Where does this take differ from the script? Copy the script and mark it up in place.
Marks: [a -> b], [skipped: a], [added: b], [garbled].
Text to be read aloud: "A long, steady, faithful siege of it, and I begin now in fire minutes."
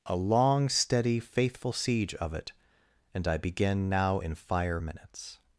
"A long, steady, faithful siege of it, and I begin now in fire minutes."